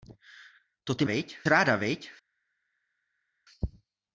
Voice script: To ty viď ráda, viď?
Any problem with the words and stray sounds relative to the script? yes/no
no